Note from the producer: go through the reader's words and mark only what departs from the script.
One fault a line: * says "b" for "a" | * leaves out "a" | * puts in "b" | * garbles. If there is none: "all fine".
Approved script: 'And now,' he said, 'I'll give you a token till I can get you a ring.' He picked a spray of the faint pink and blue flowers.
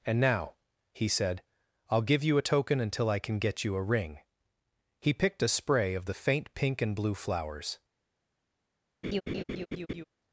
* says "until" for "till"